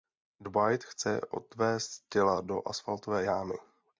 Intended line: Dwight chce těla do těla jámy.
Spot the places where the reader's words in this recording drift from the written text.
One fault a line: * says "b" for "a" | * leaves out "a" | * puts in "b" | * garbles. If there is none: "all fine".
* puts in "odvézt"
* says "asfaltové" for "těla"